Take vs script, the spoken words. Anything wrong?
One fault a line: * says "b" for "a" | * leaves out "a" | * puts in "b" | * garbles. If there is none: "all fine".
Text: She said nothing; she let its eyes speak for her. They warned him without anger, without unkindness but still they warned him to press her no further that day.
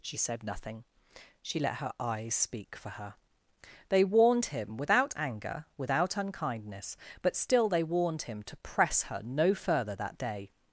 * says "her" for "its"